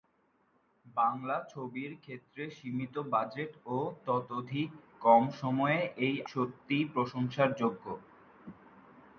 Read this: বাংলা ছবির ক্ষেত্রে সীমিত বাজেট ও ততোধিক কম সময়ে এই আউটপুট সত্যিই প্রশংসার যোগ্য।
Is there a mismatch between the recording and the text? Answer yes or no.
yes